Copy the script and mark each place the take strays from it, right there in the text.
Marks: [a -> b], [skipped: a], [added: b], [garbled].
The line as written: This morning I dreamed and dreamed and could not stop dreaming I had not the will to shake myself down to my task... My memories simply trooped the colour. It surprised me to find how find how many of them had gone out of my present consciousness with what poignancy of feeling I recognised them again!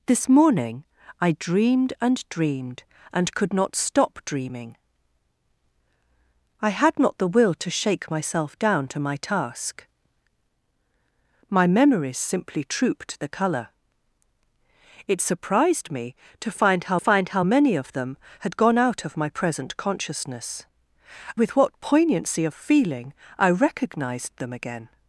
This morning I dreamed and dreamed and could not stop dreaming I had not the will to shake myself down to my task... My memories simply trooped the colour. It surprised me to find how find how many of them had gone out of my present consciousness with what poignancy of feeling I recognised them again!